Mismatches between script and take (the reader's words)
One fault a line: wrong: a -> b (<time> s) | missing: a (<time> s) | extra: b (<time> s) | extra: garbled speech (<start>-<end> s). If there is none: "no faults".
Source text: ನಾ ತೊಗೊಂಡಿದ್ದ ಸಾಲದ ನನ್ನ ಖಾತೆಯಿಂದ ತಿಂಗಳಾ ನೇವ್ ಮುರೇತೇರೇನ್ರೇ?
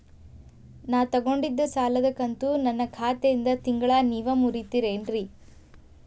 extra: ಕಂತು (2.1 s)